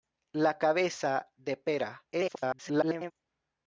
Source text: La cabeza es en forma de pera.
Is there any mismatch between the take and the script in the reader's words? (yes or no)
yes